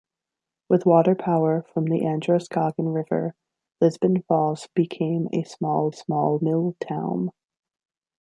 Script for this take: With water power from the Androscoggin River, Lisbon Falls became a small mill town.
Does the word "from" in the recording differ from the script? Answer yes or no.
no